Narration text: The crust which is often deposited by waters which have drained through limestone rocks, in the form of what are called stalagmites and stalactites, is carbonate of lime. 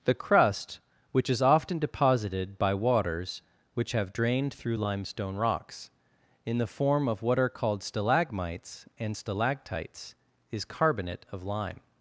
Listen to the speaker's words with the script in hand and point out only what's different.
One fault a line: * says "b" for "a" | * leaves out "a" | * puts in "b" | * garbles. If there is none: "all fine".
all fine